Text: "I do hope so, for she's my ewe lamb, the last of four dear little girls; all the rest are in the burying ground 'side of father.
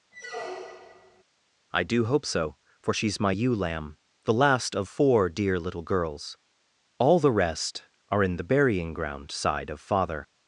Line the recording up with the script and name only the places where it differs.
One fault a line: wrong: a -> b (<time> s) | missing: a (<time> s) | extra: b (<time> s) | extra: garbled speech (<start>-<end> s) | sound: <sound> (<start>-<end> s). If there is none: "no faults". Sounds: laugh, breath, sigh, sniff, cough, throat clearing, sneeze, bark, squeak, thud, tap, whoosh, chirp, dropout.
sound: squeak (0.1-1.2 s)